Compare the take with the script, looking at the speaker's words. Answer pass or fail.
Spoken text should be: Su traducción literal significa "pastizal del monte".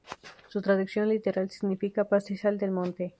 pass